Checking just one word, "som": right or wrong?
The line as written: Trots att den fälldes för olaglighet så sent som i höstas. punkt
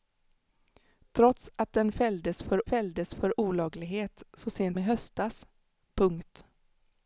wrong